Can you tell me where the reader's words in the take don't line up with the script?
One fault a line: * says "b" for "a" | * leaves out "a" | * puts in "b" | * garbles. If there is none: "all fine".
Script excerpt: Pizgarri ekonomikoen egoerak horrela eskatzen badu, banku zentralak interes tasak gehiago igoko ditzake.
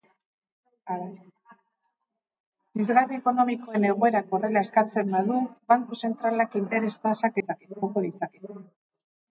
* says "ditzake" for "gehiago"